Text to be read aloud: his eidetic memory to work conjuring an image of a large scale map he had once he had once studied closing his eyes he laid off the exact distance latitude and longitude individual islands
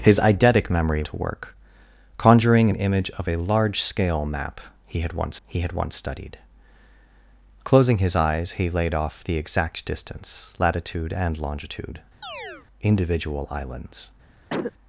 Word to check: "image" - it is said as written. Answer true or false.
true